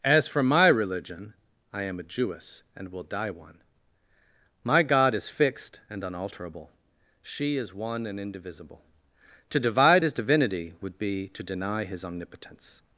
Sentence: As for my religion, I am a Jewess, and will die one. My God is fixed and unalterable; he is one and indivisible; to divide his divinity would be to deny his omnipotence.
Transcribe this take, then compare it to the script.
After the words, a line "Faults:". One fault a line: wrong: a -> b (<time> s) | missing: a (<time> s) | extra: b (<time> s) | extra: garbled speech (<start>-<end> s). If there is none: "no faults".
As for my religion, I am a Jewess, and will die one. My God is fixed and unalterable; she is one and indivisible; to divide his divinity would be to deny his omnipotence.
Faults:
wrong: he -> she (7.2 s)